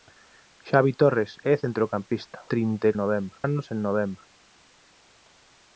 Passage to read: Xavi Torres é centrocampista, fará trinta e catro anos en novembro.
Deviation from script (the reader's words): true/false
true